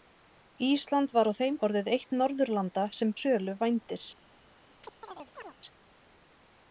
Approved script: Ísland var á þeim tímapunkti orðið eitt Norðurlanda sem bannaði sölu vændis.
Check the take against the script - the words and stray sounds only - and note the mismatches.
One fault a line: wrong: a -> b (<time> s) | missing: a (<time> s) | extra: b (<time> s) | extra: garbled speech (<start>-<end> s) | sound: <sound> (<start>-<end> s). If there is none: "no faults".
missing: tímapunkti (1.6 s)
missing: bannaði (3.1 s)
sound: chirp (4.8-5.5 s)